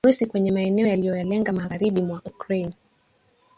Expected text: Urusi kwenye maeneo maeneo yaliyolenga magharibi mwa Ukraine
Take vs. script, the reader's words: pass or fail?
fail